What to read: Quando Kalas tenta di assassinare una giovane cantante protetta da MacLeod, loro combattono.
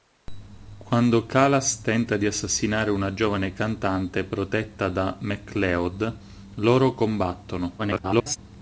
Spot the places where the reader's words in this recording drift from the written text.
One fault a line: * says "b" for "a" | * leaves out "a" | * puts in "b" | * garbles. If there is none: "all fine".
* garbles